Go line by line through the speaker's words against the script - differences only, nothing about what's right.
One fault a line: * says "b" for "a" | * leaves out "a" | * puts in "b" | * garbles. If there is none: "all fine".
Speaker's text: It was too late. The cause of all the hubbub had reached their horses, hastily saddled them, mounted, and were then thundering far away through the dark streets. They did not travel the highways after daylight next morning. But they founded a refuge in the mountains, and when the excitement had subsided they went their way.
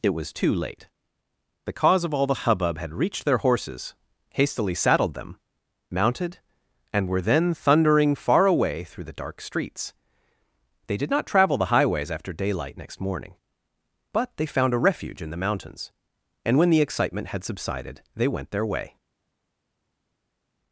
* says "found" for "founded"